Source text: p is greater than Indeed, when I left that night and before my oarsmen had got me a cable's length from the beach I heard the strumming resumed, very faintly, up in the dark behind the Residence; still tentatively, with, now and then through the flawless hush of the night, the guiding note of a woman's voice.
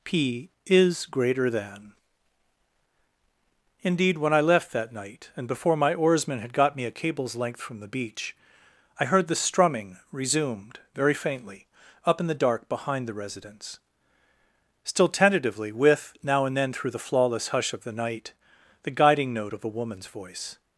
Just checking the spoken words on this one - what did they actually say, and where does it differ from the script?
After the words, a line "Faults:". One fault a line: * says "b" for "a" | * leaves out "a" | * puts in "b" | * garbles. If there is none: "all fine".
p is greater than Indeed, when I left that night and before my oarsmen had got me a cable's length from the beach I heard the strumming resumed, very faintly, up in the dark behind the Residence; still tentatively, with, now and then through the flawless hush of the night, the guiding note of a woman's voice.
Faults:
all fine